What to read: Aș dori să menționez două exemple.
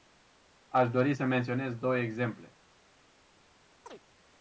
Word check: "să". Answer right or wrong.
right